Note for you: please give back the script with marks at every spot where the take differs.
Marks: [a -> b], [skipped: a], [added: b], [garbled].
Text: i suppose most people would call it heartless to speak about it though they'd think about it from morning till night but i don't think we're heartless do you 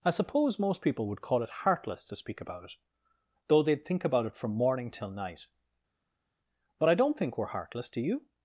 i suppose most people would call it heartless to speak about it though they'd think about it from morning till night but i don't think we're heartless do you